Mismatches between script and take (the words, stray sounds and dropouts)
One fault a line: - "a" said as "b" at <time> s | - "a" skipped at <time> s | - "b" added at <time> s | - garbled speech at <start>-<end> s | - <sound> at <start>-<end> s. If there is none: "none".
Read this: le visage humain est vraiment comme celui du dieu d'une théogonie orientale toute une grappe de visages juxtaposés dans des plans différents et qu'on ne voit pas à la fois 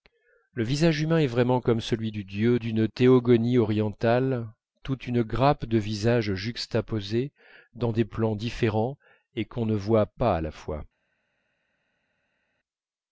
none